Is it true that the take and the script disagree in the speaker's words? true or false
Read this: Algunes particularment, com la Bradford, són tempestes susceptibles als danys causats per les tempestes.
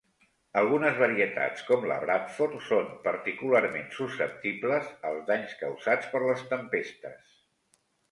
true